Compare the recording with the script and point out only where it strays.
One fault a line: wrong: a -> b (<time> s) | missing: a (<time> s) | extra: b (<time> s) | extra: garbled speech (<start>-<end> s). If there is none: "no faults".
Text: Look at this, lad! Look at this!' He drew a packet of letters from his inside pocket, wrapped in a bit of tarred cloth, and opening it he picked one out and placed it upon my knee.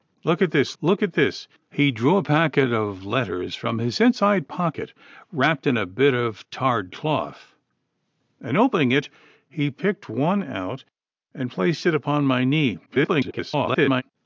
missing: lad (0.8 s)
extra: garbled speech (12.9-14.0 s)